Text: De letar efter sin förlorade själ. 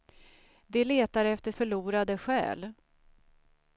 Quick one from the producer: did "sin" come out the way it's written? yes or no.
no